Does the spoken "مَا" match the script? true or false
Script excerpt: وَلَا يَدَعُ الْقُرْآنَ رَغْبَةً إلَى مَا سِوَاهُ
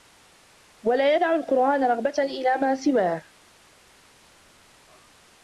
true